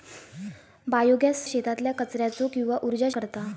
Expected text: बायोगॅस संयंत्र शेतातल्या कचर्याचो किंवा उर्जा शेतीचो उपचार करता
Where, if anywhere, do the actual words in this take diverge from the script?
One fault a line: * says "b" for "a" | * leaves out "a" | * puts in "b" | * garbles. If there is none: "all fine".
* leaves out "संयंत्र"
* leaves out "शेतीचो उपचार"